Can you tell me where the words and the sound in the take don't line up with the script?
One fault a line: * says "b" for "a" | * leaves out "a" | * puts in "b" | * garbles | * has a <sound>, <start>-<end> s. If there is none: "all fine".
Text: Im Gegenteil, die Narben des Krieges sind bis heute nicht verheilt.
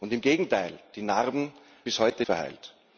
* leaves out "des Krieges sind"
* leaves out "nicht"